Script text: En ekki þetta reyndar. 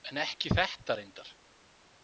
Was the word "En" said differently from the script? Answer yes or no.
no